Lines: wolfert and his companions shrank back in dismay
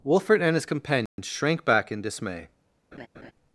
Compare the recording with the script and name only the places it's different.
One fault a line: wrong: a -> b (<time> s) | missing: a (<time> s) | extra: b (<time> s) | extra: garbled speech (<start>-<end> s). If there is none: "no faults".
no faults